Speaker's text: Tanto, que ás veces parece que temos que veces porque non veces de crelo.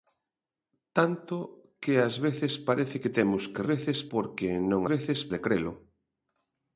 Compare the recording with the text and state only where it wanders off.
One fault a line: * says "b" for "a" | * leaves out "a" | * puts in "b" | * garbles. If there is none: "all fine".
all fine